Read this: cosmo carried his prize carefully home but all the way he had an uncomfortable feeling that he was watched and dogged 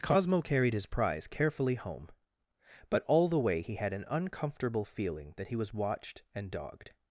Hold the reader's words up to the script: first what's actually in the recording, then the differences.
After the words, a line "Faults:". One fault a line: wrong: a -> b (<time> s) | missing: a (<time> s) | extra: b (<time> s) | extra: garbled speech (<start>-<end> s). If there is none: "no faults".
cosmo carried his prize carefully home but all the way he had an uncomfortable feeling that he was watched and dogged
Faults:
no faults